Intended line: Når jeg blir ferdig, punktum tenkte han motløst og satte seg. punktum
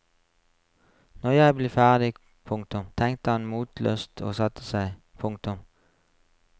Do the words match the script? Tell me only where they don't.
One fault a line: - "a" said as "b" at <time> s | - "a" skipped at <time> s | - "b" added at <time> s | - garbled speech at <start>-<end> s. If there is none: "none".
none